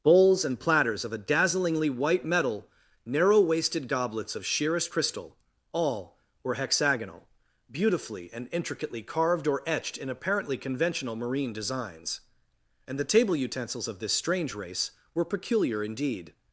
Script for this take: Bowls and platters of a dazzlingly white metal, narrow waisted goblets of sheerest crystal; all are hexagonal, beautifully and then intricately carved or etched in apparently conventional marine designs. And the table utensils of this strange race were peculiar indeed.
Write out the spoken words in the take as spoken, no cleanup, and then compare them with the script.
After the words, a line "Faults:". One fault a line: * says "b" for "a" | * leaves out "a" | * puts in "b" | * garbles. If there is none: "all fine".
Bowls and platters of a dazzlingly white metal, narrow waisted goblets of sheerest crystal; all were hexagonal, beautifully and intricately carved or etched in apparently conventional marine designs. And the table utensils of this strange race were peculiar indeed.
Faults:
* says "were" for "are"
* leaves out "then"